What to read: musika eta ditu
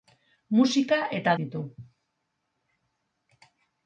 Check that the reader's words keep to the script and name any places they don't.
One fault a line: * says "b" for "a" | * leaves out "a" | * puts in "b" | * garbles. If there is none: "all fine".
all fine